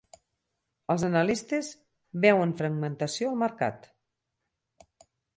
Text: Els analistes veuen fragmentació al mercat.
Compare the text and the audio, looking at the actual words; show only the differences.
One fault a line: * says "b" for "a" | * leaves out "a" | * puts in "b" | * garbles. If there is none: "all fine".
all fine